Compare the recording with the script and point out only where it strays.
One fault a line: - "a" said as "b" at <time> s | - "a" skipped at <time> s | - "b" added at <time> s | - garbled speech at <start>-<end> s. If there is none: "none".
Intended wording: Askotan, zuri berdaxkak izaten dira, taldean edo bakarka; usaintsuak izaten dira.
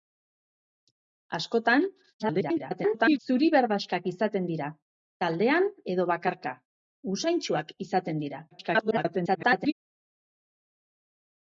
- garbled speech at 2.2-3.2 s
- garbled speech at 8.5-9.7 s